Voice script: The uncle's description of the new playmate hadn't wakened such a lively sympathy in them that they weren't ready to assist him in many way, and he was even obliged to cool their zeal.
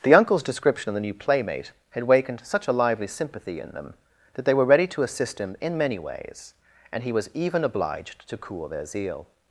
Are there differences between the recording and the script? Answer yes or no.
yes